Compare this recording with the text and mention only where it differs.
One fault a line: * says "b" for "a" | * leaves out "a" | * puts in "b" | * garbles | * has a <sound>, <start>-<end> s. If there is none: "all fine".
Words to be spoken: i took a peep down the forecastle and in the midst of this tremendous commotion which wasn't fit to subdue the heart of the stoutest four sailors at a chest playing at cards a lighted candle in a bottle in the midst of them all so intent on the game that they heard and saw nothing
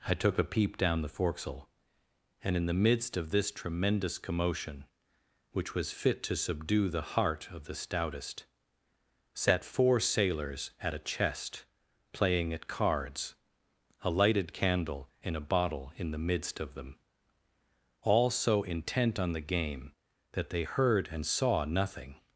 * says "was" for "wasn't"
* puts in "sat"